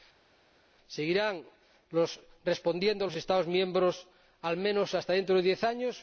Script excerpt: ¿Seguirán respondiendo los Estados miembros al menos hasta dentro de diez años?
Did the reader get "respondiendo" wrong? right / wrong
right